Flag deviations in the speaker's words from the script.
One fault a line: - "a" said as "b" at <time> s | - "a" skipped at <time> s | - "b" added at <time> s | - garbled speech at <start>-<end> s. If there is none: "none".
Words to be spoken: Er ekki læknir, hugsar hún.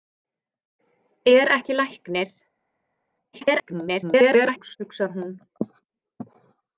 - garbled speech at 3.3-4.8 s